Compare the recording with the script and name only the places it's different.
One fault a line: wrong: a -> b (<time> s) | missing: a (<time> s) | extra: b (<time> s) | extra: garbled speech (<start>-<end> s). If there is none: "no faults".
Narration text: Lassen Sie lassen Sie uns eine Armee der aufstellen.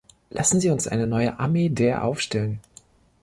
missing: lassen Sie (0.7 s)
extra: neue (1.0 s)